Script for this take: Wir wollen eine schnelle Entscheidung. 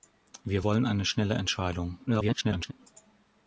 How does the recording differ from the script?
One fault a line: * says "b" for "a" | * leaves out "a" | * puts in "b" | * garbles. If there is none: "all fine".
* garbles